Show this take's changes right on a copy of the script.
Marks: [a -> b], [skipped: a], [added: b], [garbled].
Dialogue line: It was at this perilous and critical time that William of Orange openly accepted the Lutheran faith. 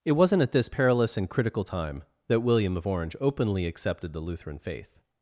It [was -> wasn't] at this perilous and critical time that William of Orange openly accepted the Lutheran faith.